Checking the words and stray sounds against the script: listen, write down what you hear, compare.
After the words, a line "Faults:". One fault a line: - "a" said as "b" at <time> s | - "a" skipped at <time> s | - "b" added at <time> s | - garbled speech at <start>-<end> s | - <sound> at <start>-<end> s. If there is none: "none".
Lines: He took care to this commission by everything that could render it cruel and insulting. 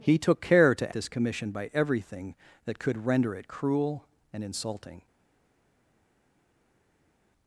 He took care to this commission by everything that could render it cruel and insulting.
Faults:
none